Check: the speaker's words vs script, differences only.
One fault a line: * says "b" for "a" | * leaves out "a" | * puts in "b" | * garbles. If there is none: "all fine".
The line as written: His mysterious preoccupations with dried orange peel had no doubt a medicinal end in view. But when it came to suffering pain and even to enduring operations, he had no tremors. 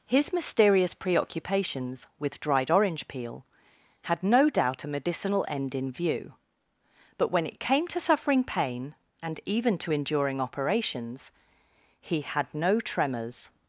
all fine